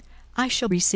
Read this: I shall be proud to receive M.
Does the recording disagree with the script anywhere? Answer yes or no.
yes